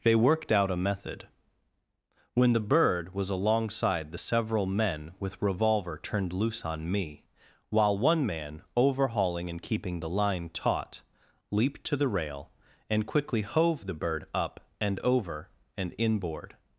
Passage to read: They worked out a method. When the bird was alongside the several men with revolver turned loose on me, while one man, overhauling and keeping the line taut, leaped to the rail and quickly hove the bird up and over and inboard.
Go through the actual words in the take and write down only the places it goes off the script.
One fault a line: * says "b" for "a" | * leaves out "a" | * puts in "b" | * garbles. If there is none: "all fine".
all fine